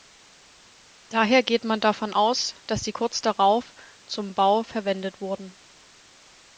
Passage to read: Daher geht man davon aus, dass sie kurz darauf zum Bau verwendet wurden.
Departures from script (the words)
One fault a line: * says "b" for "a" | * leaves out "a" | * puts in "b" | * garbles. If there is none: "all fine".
all fine